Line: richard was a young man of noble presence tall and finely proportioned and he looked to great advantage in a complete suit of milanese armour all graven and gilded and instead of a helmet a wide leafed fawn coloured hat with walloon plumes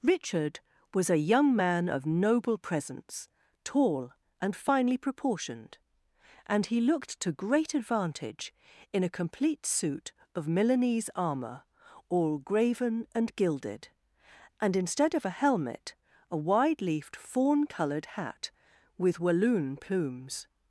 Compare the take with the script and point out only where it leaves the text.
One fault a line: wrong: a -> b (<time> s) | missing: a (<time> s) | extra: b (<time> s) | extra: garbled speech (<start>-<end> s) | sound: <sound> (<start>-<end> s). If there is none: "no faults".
no faults